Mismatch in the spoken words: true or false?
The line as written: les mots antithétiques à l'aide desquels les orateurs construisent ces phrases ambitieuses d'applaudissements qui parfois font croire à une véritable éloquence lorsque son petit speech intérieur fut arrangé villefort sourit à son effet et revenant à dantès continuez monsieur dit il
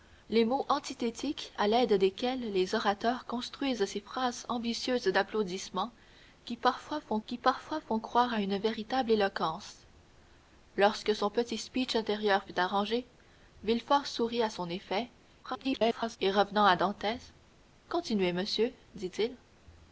true